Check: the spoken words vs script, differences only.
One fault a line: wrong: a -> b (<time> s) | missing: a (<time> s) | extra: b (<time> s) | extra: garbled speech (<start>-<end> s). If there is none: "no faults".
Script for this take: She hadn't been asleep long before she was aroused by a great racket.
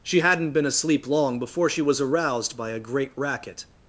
no faults